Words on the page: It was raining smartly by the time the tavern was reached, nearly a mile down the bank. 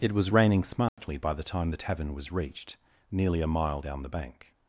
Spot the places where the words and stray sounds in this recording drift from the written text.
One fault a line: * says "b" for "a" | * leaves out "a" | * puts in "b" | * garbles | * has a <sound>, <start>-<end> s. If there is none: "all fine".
* has a dropout, 0.9-1.0 s